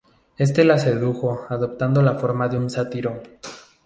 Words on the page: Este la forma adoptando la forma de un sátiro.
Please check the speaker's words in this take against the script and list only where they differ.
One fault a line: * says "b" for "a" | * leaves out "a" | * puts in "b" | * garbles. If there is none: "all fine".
* says "sedujo" for "forma"